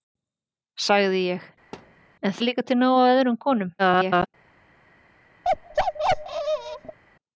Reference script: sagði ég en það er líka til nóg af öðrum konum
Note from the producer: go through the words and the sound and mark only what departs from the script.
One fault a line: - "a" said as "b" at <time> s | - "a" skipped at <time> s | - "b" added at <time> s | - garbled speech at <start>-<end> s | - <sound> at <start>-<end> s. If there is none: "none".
- thud at 1.7-2.1 s
- "það" skipped at 2.4 s
- garbled speech at 3.8-4.3 s
- bark at 5.4-7.0 s